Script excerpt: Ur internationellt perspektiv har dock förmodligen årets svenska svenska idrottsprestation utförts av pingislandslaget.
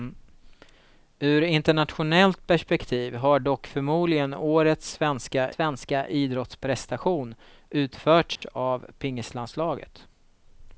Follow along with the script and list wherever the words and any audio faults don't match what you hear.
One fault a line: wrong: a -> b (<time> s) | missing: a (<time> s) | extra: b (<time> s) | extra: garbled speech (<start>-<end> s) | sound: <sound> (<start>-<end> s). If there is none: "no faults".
sound: dropout (8.4-8.4 s)